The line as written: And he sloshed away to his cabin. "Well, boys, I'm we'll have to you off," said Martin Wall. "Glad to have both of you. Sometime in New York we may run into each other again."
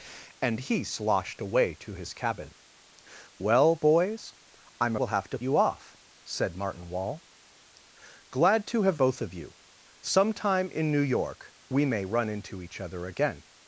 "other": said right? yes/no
yes